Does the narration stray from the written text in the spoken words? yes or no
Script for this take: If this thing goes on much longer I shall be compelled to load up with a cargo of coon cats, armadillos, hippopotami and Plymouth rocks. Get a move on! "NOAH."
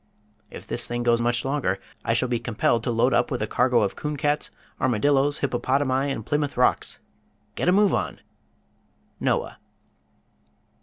yes